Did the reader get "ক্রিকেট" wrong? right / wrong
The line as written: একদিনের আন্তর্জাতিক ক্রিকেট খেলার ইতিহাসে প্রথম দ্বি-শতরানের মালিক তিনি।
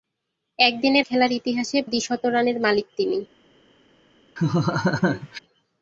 wrong